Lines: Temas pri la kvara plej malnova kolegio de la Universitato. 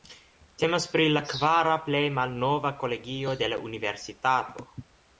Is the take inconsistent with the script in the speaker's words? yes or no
no